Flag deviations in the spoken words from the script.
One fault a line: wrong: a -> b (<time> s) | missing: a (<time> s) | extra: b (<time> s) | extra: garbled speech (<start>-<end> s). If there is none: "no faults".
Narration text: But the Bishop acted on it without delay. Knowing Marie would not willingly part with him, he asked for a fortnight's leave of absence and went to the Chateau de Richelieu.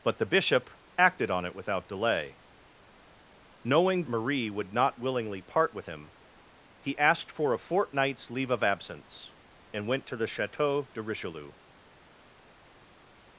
no faults